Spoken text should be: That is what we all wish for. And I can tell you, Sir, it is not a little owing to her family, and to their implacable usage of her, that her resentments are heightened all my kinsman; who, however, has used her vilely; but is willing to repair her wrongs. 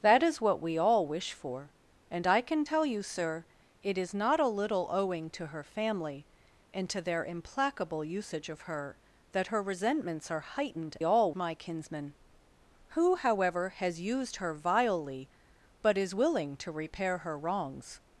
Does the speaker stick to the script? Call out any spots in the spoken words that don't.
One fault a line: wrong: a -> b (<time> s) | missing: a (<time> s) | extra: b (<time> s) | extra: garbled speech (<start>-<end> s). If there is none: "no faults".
no faults